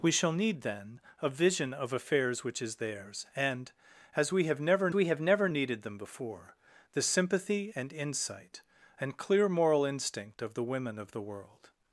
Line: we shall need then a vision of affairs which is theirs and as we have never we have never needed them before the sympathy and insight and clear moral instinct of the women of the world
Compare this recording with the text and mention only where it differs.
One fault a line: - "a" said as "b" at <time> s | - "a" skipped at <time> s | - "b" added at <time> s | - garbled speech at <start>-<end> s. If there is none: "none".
none